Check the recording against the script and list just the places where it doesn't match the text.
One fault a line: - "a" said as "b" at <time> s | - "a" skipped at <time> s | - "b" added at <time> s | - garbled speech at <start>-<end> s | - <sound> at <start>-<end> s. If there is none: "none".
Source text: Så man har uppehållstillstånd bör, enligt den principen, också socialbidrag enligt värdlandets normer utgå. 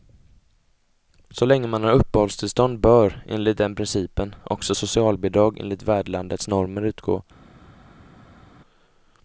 - "länge" added at 1.4 s